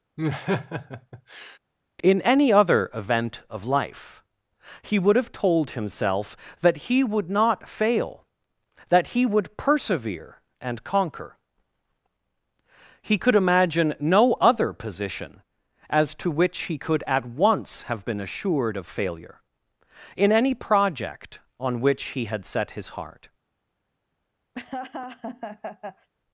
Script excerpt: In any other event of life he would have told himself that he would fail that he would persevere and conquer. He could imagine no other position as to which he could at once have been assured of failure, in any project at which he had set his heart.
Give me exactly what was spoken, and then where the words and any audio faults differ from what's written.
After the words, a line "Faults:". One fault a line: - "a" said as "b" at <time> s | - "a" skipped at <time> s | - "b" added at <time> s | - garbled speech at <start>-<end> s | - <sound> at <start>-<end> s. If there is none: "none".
In any other event of life he would have told himself that he would not fail that he would persevere and conquer. He could imagine no other position as to which he could at once have been assured of failure, in any project on which he had set his heart.
Faults:
- laugh at 0.2-1.6 s
- "not" added at 7.3 s
- "at" said as "on" at 21.6 s
- laugh at 24.5-26.1 s